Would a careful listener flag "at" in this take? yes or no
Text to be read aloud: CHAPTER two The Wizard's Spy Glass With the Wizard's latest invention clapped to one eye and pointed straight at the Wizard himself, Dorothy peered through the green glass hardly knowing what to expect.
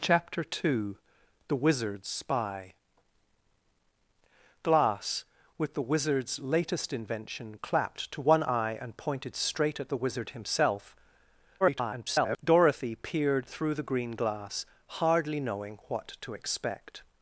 no